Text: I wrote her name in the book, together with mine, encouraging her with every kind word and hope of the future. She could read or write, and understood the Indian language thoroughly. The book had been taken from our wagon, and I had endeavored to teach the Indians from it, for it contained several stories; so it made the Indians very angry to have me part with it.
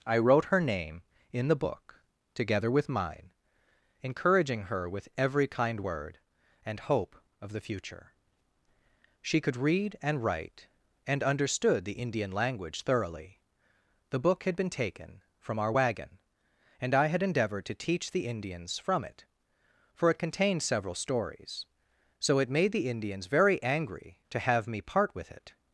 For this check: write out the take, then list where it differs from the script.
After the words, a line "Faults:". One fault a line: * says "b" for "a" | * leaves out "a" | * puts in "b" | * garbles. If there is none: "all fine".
I wrote her name in the book, together with mine, encouraging her with every kind word and hope of the future. She could read and write, and understood the Indian language thoroughly. The book had been taken from our wagon, and I had endeavored to teach the Indians from it, for it contained several stories; so it made the Indians very angry to have me part with it.
Faults:
* says "and" for "or"